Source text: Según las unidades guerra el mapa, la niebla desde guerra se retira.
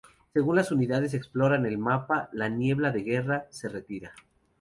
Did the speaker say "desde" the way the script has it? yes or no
no